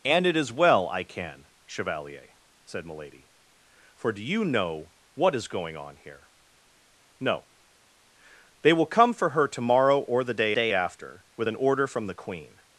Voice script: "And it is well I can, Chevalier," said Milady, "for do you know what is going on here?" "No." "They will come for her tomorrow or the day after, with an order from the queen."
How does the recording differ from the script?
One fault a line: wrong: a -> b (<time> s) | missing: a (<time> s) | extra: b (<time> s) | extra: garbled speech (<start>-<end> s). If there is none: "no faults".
extra: day (10.5 s)